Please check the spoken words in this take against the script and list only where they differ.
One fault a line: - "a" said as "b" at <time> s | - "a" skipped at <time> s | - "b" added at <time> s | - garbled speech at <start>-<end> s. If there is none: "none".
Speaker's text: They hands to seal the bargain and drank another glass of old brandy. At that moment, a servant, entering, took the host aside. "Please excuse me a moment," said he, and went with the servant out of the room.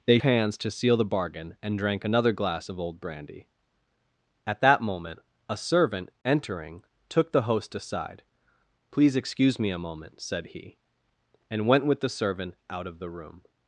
none